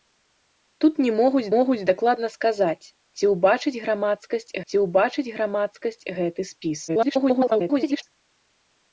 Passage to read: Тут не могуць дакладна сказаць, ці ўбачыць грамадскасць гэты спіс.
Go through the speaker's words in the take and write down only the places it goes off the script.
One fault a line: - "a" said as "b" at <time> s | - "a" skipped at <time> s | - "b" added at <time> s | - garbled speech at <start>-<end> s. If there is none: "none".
- "могуць" added at 1.5 s
- "ці ўбачыць грамадскасць" added at 4.7 s
- garbled speech at 6.9-8.0 s